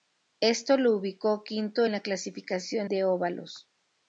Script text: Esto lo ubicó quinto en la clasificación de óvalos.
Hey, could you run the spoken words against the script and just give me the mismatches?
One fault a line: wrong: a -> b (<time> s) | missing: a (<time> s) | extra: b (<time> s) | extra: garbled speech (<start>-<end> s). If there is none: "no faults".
no faults